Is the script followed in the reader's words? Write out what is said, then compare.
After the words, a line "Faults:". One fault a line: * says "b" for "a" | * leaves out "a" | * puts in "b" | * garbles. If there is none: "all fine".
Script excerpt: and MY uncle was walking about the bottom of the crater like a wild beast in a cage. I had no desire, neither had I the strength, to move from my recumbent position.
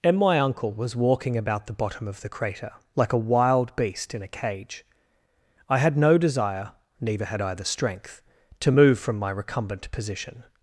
and MY uncle was walking about the bottom of the crater like a wild beast in a cage. I had no desire, neither had I the strength, to move from my recumbent position.
Faults:
all fine